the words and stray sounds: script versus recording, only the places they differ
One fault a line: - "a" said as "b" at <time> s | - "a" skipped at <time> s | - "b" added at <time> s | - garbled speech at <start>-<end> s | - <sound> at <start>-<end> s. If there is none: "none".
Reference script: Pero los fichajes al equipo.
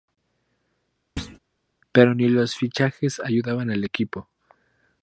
- thud at 1.2-1.4 s
- "ni" added at 2.1 s
- "ayudaban" added at 3.2 s